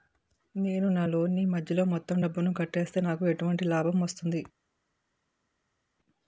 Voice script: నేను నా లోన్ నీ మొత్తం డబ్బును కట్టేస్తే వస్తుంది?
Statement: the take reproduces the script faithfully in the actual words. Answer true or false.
false